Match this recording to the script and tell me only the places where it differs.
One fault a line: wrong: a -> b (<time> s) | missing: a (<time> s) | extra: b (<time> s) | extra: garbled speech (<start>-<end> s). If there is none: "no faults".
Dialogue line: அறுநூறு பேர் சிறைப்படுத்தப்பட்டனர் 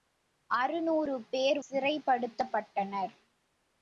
no faults